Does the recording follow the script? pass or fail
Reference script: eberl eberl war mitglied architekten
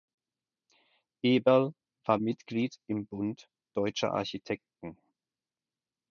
fail